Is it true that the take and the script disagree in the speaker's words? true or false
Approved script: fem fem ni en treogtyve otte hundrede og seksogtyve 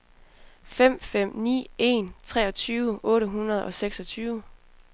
false